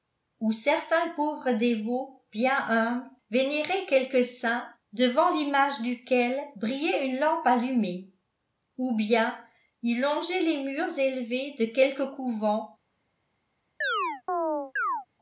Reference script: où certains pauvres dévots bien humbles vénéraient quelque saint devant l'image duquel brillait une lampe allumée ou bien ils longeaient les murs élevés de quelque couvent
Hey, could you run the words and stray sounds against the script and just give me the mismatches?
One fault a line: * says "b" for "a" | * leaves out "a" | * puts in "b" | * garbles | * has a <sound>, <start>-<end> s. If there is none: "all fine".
* has a chirp, 13.8-15.1 s